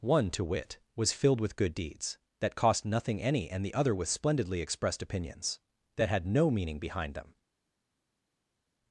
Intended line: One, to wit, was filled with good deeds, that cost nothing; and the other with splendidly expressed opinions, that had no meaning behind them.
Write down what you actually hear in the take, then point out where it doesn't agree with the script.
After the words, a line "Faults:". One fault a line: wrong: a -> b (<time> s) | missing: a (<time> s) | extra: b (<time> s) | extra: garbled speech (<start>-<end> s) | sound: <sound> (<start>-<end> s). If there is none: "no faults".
One, to wit, was filled with good deeds, that cost nothing; any and the other with splendidly expressed opinions, that had no meaning behind them.
Faults:
extra: any (3.2 s)